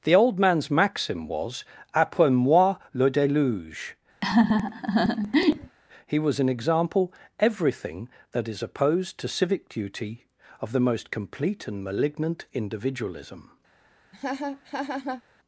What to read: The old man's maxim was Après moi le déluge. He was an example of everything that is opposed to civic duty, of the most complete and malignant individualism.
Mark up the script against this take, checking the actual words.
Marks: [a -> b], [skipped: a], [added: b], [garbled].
The old man's maxim was Après moi le déluge. He was an example [skipped: of] everything that is opposed to civic duty, of the most complete and malignant individualism.